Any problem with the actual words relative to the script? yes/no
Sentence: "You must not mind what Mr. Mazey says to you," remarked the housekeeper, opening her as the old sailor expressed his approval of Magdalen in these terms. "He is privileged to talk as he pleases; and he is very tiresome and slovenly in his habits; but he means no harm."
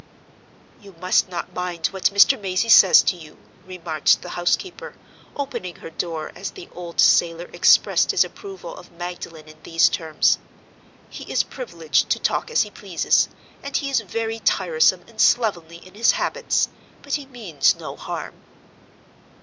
yes